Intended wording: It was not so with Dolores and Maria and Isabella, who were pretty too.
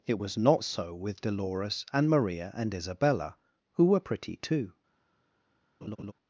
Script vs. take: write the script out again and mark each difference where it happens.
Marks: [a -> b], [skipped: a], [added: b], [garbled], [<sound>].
It was not so with Dolores and Maria and Isabella, who were pretty too. [laugh]